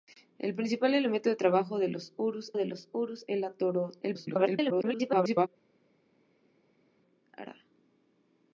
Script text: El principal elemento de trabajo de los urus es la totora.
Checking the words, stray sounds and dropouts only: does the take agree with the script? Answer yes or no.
no